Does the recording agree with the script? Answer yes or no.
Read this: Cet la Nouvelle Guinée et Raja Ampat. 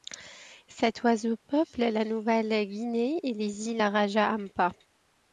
no